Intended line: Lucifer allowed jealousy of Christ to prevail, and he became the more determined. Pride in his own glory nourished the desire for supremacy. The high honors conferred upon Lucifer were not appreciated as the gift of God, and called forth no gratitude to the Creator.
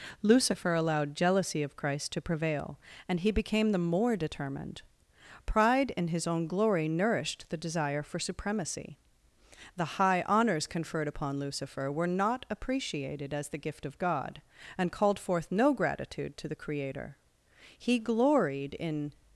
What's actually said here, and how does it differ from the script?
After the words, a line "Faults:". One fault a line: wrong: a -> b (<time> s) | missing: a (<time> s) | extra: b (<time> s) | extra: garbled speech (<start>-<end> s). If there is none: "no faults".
Lucifer allowed jealousy of Christ to prevail, and he became the more determined. Pride in his own glory nourished the desire for supremacy. The high honors conferred upon Lucifer were not appreciated as the gift of God, and called forth no gratitude to the Creator. He gloried in
Faults:
extra: He gloried in (17.8 s)